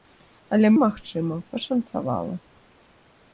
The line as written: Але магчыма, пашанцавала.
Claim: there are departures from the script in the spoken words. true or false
false